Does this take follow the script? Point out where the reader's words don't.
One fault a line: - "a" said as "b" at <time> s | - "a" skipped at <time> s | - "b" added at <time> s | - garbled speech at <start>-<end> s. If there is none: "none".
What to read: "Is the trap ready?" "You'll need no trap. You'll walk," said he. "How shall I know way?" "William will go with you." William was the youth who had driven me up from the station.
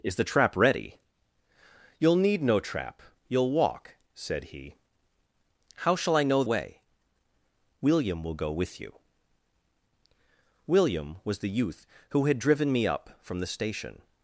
none